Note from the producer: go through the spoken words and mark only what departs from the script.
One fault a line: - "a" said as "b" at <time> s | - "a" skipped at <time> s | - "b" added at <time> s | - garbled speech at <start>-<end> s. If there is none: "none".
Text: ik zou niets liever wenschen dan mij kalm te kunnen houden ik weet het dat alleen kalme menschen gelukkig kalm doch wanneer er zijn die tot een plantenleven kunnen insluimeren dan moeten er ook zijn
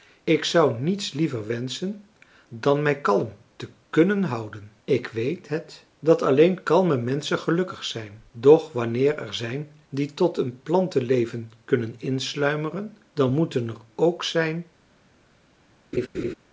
- "kalm" said as "zijn" at 7.8 s